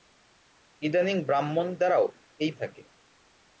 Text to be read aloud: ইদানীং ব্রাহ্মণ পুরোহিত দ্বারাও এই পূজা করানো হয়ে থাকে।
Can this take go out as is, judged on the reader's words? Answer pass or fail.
fail